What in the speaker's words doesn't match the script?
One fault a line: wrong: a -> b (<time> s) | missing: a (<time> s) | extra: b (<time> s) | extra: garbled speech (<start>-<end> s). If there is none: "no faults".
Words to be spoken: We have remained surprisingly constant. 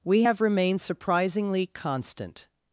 no faults